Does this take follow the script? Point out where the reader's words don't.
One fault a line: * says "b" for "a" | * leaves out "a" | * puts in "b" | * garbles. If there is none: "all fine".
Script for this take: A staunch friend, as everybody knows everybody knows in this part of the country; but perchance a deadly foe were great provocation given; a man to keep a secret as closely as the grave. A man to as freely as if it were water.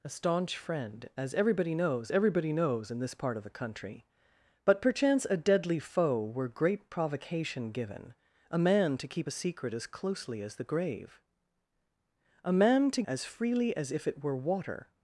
all fine